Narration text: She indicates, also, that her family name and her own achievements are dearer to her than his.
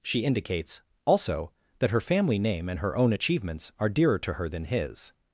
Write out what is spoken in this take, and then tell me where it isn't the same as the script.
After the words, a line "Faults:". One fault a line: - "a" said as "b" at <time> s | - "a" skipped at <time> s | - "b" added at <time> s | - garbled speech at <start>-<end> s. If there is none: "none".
She indicates, also, that her family name and her own achievements are dearer to her than his.
Faults:
none